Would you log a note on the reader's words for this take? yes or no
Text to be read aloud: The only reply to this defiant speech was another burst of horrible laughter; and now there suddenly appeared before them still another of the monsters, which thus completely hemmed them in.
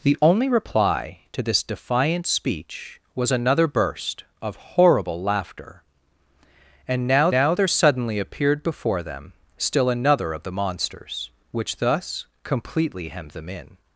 yes